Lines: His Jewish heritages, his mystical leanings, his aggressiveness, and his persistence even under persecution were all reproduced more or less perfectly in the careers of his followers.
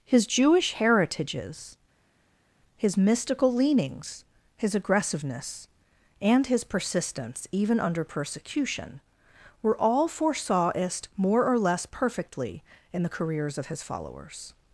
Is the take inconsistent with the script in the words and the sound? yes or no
yes